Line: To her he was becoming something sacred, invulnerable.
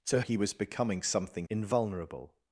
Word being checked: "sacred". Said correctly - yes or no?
no